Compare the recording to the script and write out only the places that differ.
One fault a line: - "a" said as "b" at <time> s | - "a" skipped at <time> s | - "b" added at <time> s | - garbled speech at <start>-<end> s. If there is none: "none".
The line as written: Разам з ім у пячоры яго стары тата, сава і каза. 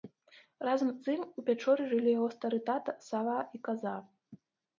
- "жылі" added at 1.9 s